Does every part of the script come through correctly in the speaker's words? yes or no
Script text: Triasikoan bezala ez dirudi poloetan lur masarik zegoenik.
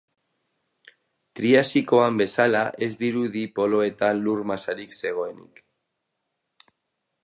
yes